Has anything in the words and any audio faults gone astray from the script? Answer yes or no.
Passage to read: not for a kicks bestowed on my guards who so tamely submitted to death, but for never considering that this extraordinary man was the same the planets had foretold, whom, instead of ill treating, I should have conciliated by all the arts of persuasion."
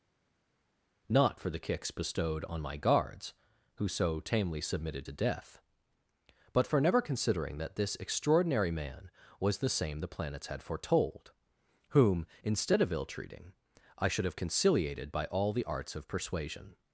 yes